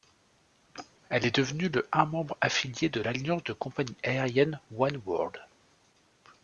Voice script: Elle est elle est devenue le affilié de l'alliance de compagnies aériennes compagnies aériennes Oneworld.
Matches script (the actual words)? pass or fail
fail